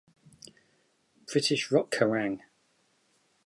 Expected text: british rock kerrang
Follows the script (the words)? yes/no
yes